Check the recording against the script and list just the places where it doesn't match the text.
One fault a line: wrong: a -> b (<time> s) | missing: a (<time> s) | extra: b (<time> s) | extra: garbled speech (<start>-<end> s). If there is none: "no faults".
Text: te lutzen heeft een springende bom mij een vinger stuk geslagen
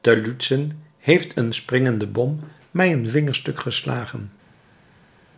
no faults